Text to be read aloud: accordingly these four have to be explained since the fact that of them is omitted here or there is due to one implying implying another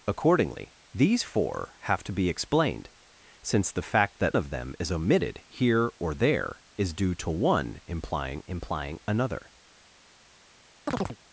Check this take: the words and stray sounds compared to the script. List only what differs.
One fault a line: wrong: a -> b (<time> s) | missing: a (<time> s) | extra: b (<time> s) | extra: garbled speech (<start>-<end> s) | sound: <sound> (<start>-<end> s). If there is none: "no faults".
sound: chirp (10.9-11.2 s)